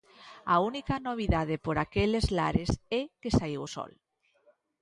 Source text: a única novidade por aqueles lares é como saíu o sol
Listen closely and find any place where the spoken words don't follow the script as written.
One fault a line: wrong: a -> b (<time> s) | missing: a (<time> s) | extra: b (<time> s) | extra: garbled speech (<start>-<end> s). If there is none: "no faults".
wrong: como -> que (3.2 s)